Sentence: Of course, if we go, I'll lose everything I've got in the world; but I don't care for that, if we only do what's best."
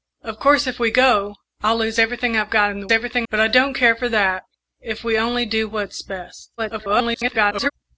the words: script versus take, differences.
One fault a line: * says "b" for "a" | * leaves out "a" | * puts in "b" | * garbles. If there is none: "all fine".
* says "everything" for "world"
* garbles